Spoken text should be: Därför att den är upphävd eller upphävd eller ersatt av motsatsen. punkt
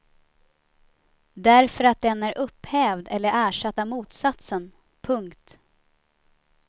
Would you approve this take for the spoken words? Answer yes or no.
no